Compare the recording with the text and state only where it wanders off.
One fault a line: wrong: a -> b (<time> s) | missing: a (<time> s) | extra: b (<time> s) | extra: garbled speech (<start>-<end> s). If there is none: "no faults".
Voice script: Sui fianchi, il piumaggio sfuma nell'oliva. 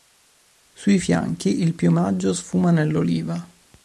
no faults